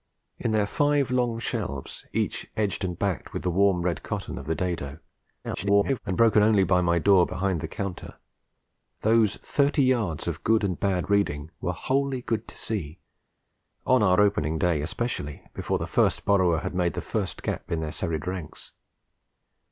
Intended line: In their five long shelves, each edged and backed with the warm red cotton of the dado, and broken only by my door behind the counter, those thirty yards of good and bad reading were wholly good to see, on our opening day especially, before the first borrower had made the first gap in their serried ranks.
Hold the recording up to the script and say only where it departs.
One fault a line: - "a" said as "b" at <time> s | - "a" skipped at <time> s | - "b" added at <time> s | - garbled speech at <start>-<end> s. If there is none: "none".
- garbled speech at 5.4-6.0 s